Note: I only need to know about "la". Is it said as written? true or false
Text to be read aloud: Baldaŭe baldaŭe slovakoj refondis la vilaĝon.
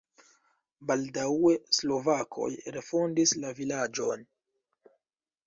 true